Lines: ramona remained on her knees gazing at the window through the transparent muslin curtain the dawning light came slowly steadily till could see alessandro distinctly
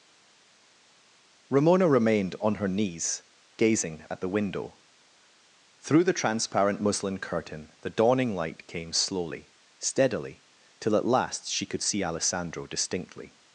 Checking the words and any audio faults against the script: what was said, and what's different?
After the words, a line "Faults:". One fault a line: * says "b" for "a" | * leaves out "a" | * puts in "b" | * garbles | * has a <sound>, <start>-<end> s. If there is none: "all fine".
ramona remained on her knees gazing at the window through the transparent muslin curtain the dawning light came slowly steadily till at last she could see alessandro distinctly
Faults:
* puts in "at last she"